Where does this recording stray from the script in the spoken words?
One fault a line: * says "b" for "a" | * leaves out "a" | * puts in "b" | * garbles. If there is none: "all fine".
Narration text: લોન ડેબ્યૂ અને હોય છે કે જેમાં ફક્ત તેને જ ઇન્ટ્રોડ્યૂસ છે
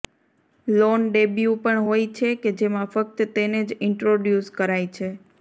* says "પણ" for "અને"
* puts in "કરાય"